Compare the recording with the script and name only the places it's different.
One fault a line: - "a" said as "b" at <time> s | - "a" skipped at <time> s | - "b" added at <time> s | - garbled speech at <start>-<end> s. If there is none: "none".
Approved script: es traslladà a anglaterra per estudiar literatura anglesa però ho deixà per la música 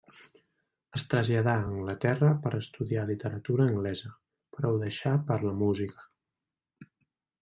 none